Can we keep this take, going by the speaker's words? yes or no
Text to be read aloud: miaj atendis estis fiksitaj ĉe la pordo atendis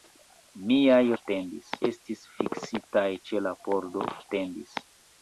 yes